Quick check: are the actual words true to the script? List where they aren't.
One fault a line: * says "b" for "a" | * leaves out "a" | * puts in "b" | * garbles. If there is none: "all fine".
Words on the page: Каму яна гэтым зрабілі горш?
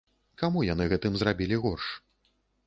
* says "яны" for "яна"